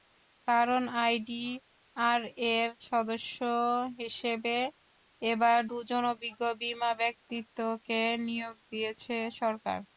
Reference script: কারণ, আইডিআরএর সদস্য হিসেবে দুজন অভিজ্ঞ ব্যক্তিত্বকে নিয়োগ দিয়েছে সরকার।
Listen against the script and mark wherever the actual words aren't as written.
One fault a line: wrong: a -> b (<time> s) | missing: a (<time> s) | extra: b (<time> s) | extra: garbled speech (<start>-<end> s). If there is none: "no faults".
extra: এবার (5.2 s)
extra: বিমা (6.6 s)